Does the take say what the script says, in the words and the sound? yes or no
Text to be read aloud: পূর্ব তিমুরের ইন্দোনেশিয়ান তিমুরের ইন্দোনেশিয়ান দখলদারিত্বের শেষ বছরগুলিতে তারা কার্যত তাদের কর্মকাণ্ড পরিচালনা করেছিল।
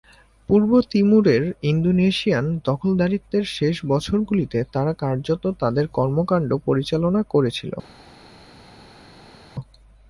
no